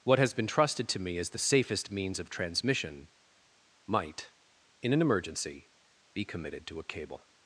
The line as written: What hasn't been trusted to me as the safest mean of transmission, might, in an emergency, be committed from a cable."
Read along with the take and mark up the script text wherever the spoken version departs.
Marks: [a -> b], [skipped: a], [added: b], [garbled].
What [hasn't -> has] been trusted to me as the safest [mean -> means] of transmission, might, in an emergency, be committed [from -> to] a cable."